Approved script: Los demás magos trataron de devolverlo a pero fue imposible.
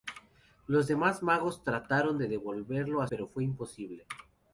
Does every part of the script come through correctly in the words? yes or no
yes